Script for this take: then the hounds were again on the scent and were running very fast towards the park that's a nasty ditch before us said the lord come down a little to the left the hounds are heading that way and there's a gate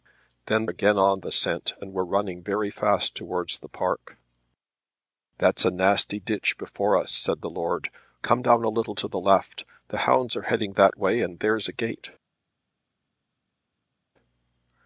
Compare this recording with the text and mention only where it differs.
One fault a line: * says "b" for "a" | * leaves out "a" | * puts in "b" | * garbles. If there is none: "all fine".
* leaves out "the hounds were"